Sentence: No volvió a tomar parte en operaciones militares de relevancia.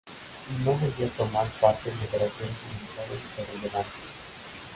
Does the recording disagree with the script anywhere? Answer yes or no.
no